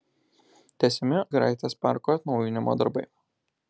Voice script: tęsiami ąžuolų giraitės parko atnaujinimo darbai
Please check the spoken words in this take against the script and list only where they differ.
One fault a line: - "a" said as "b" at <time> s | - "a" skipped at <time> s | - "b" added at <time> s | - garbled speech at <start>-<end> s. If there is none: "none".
- "ąžuolų" skipped at 1.2 s